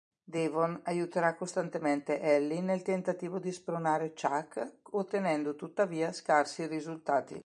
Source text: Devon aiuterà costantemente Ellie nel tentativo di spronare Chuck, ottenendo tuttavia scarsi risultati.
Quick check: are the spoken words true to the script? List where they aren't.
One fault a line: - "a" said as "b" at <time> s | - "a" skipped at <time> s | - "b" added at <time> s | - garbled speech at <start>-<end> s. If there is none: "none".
none